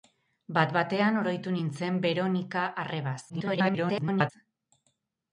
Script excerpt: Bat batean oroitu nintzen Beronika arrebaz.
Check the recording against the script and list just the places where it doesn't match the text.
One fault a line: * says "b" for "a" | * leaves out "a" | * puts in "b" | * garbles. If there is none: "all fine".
* garbles